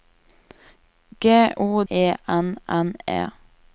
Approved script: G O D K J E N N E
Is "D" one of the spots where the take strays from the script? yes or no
yes